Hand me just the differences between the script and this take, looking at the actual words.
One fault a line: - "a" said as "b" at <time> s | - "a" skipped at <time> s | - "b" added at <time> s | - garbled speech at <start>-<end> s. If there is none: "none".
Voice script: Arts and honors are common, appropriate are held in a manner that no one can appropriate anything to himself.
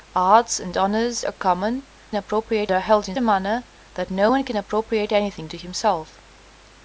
none